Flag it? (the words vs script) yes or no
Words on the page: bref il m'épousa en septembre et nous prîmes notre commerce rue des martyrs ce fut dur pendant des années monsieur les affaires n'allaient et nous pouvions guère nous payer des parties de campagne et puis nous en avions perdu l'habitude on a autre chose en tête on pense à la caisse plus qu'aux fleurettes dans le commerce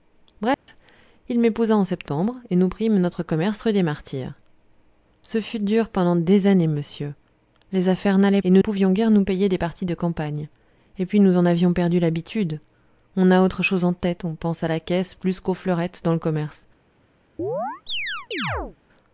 no